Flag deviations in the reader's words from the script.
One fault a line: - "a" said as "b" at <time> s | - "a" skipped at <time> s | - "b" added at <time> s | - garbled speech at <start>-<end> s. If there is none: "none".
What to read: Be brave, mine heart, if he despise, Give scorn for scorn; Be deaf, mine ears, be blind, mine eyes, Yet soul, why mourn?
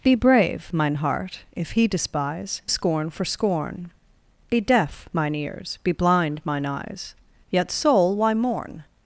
- "Give" skipped at 2.6 s